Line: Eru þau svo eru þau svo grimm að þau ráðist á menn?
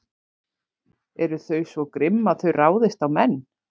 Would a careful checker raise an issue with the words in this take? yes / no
yes